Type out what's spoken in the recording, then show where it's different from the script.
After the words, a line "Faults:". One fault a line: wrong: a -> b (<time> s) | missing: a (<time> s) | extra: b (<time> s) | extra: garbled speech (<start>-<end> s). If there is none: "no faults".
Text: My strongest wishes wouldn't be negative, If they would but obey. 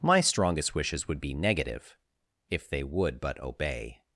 My strongest wishes would be negative, If they would but obey.
Faults:
wrong: wouldn't -> would (1.1 s)